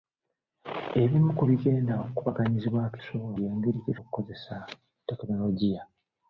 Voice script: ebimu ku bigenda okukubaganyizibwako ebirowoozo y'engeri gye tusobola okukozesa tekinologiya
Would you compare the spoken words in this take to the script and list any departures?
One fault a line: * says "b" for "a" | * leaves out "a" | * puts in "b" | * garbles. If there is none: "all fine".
* says "tusobola" for "ebirowoozo"
* leaves out "tusobola"